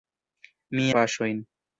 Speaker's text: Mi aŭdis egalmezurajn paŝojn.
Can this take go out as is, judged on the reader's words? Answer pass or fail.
fail